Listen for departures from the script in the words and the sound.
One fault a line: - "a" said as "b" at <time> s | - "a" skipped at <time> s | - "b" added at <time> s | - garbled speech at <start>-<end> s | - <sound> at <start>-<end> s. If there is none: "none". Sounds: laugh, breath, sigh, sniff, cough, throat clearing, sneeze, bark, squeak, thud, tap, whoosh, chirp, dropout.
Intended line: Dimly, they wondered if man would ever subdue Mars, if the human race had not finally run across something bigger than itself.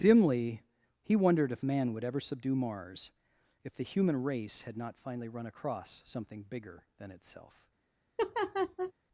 - "they" said as "he" at 1.0 s
- laugh at 8.2-8.9 s